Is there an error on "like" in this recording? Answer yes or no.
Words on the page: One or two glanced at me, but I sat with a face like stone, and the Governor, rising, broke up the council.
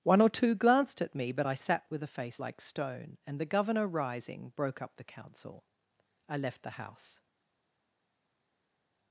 no